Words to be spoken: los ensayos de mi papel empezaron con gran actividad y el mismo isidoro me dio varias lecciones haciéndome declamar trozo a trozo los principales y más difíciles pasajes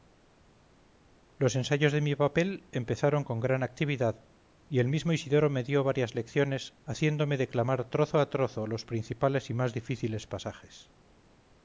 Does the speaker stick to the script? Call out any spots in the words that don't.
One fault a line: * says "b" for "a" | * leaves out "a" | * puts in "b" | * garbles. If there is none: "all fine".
all fine